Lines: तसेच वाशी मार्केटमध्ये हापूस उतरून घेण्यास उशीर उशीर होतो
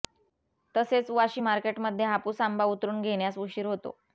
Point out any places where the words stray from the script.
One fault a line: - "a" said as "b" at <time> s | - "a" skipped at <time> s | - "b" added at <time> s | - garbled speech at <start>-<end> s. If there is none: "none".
- "आंबा" added at 2.4 s
- "उशीर" skipped at 3.7 s